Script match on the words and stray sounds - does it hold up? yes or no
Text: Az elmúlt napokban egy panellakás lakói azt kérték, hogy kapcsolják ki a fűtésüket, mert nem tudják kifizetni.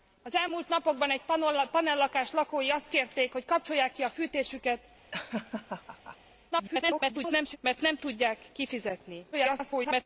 no